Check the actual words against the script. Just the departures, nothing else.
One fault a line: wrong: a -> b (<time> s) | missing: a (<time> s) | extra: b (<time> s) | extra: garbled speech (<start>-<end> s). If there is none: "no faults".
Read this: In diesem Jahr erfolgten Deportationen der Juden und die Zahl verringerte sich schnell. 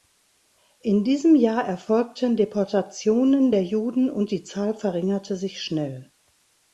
no faults